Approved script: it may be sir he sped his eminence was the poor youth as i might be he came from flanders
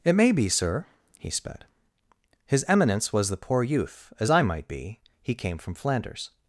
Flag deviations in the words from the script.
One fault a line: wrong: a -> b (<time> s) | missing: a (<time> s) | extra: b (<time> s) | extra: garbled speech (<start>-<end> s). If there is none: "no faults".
no faults